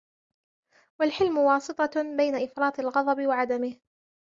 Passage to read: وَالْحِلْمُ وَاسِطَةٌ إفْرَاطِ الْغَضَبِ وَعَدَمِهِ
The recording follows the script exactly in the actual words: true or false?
false